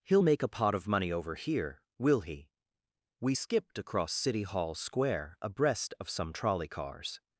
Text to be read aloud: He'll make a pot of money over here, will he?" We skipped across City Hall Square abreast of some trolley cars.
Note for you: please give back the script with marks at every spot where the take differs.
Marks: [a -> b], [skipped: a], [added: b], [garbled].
He'll make a pot of money over here, will he?" We skipped across City Hall Square abreast of some trolley cars.